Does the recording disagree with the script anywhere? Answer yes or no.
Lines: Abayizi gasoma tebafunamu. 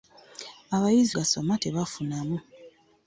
no